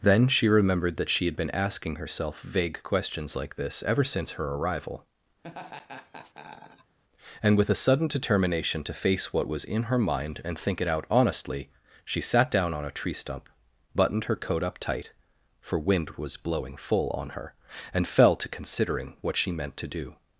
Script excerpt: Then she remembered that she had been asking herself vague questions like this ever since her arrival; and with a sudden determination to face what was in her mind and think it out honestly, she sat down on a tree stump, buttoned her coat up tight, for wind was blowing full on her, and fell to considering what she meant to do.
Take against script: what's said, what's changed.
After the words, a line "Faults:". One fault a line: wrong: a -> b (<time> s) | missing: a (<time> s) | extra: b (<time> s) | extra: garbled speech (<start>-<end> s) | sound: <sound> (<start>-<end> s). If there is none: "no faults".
Then she remembered that she had been asking herself vague questions like this ever since her arrival; and with a sudden determination to face what was in her mind and think it out honestly, she sat down on a tree stump, buttoned her coat up tight, for wind was blowing full on her, and fell to considering what she meant to do.
Faults:
sound: laugh (5.4-7.0 s)